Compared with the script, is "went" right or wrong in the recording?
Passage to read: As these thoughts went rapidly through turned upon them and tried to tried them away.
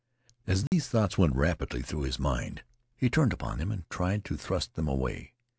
right